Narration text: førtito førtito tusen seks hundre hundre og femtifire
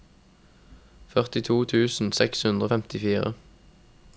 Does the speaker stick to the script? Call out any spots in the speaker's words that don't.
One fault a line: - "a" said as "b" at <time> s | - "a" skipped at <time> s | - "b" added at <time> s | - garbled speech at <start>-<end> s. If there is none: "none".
- "førtito" skipped at 1.6 s
- "hundre" skipped at 2.7 s